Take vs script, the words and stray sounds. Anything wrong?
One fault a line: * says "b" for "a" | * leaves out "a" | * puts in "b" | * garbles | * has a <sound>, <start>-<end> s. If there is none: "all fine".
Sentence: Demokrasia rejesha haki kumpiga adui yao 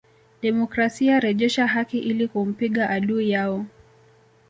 * puts in "ili"